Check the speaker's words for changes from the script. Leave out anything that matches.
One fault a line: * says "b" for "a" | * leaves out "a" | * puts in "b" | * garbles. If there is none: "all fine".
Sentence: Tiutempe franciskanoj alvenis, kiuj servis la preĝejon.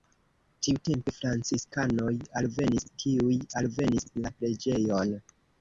* says "alvenis" for "servis"